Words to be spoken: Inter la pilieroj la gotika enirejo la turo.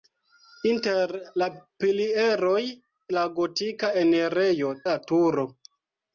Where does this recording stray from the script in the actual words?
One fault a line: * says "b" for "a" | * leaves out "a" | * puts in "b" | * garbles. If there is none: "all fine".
all fine